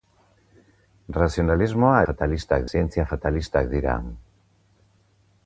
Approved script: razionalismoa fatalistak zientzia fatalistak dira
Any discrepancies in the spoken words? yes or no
no